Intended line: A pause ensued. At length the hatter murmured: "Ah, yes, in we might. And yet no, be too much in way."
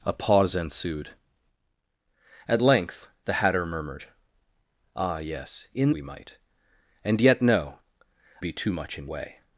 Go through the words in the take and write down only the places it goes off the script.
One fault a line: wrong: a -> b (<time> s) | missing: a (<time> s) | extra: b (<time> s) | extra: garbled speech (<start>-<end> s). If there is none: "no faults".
no faults